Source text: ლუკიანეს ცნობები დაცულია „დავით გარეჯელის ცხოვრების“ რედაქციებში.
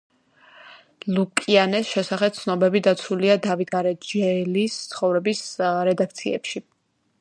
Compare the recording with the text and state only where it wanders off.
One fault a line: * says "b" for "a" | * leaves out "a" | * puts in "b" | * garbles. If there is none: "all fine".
* puts in "შესახებ"